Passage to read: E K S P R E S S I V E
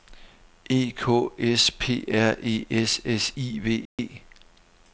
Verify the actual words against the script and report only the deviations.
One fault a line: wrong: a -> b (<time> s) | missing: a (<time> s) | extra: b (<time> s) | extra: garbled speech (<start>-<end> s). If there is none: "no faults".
no faults